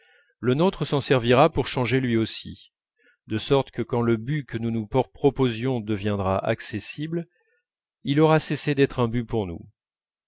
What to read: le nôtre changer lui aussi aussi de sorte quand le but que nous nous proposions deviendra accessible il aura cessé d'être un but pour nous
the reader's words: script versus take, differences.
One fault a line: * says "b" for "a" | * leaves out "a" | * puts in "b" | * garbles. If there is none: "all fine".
* puts in "s'en servira pour"
* leaves out "aussi"
* puts in "que"